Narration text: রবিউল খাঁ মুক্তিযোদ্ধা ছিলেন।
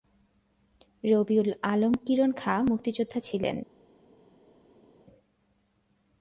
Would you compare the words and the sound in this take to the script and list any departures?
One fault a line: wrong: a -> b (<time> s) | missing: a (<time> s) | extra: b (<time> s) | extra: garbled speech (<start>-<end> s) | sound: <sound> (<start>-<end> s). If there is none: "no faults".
extra: আলম কিরণ (1.6 s)